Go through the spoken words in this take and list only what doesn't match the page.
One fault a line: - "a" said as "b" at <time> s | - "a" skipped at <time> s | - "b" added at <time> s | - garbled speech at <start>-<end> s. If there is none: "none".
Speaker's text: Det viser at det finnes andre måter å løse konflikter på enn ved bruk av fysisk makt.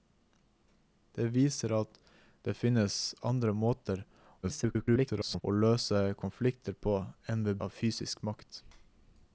- garbled speech at 4.4-5.4 s
- "bruk" skipped at 7.6 s